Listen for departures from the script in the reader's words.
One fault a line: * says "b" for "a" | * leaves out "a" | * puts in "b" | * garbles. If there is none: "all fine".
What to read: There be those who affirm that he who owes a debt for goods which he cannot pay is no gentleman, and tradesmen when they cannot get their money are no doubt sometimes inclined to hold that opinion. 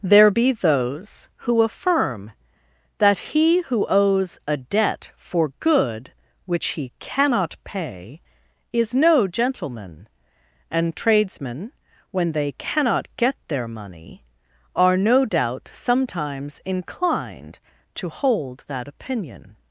* says "good" for "goods"